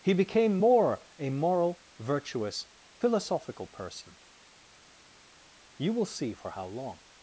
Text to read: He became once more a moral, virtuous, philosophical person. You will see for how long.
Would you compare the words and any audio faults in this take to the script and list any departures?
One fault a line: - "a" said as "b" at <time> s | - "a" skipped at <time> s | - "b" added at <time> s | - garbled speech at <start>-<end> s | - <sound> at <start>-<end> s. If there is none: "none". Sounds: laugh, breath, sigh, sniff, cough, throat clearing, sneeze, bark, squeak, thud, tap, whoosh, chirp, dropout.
- "once" skipped at 0.6 s